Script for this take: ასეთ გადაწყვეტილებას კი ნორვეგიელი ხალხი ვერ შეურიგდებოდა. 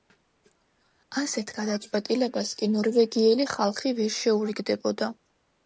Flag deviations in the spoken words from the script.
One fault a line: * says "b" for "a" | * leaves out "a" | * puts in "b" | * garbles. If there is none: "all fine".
all fine